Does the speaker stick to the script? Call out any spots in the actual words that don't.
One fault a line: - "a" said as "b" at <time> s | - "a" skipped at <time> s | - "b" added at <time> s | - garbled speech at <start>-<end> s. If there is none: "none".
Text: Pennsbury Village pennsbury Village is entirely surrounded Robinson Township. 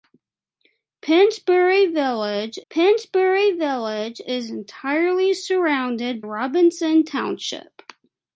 none